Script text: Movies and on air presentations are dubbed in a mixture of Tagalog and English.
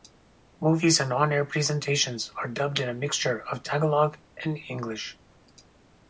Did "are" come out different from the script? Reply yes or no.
no